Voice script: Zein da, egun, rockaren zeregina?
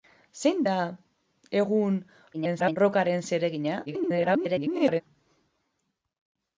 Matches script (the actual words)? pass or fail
fail